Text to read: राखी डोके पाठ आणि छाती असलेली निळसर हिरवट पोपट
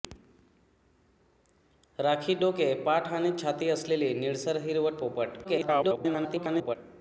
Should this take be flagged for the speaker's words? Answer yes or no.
yes